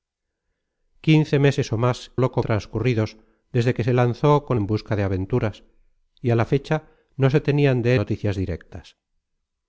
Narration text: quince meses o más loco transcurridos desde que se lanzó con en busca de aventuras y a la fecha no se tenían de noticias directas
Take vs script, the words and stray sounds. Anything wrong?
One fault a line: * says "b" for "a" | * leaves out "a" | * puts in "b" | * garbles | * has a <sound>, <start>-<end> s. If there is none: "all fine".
all fine